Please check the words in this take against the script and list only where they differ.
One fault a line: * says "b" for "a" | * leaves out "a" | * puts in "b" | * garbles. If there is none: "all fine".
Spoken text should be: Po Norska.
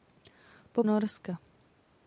all fine